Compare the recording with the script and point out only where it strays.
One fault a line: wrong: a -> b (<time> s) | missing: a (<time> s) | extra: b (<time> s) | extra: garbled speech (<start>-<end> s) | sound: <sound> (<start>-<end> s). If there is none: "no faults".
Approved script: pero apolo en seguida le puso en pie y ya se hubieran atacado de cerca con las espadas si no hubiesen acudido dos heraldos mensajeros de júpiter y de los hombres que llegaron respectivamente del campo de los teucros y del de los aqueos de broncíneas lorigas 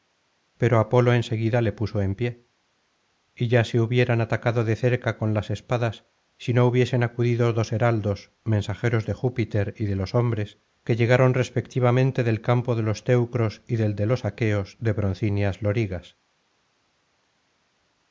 no faults